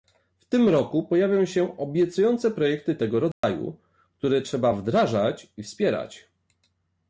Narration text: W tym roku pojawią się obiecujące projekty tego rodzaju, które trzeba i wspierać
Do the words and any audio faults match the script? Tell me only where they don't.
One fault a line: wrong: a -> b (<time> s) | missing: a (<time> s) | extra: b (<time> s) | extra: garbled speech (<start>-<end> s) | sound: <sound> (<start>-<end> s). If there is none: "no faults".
sound: dropout (3.3-3.4 s)
extra: wdrażać (4.7 s)